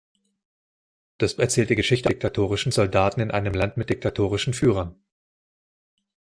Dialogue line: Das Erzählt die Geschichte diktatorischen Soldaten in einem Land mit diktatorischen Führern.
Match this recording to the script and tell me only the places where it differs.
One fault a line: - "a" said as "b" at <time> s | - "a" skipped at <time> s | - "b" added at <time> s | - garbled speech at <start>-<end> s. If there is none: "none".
none